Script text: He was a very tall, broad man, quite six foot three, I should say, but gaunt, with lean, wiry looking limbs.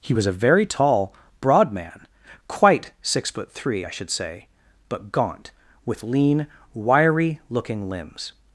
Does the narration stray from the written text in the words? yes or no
no